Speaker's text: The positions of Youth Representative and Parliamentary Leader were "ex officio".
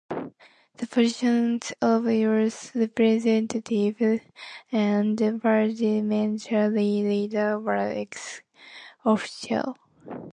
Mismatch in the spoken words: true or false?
false